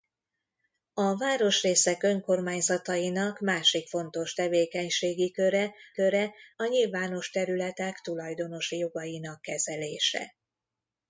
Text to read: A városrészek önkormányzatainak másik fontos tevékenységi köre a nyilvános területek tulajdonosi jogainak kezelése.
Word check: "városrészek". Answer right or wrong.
right